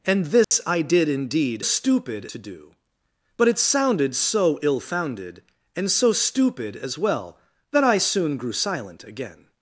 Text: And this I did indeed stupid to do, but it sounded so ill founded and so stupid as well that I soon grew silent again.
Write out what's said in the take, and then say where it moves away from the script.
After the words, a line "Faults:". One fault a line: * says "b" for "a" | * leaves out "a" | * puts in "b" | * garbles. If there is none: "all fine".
And this I did indeed stupid to do, but it sounded so ill founded and so stupid as well that I soon grew silent again.
Faults:
all fine